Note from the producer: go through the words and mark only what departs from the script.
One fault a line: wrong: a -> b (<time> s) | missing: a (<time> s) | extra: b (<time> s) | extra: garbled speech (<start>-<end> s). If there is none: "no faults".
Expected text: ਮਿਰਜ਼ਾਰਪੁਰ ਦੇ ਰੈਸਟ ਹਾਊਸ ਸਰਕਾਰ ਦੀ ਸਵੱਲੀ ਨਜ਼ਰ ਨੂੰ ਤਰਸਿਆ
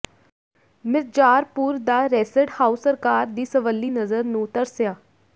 wrong: ਦੇ -> ਦਾ (1.8 s)